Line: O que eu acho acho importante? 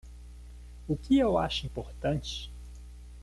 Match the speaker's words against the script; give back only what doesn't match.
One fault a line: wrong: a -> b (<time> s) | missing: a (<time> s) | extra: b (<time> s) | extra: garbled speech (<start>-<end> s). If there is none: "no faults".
missing: acho (1.7 s)